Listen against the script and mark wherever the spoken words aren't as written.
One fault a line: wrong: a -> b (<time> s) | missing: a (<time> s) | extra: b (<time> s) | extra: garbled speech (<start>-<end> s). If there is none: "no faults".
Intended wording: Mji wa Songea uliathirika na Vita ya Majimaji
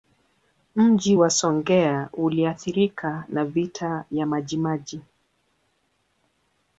no faults